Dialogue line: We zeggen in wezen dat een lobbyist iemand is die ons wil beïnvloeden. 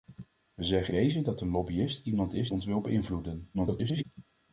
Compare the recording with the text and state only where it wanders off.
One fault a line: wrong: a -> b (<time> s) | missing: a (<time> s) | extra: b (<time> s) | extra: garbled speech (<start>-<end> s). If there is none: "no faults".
missing: in (0.9 s)
missing: die (2.5 s)
extra: garbled speech (3.5-4.0 s)